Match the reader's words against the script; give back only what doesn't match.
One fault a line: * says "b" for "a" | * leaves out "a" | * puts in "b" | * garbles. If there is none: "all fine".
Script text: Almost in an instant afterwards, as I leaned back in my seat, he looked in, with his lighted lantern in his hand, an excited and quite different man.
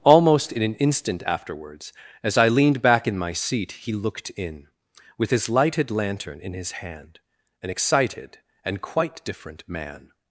all fine